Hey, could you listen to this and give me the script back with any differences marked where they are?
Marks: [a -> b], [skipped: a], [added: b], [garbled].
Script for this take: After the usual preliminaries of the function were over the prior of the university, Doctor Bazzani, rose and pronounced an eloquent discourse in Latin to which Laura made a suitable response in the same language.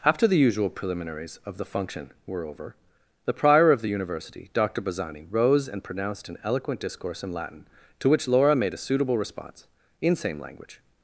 After the usual preliminaries of the function were over the prior of the university, Doctor Bazzani, rose and pronounced an eloquent discourse in Latin to which Laura made a suitable response in [skipped: the] same language.